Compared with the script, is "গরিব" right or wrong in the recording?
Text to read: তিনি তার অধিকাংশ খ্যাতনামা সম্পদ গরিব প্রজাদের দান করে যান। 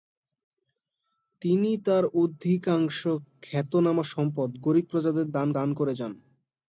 right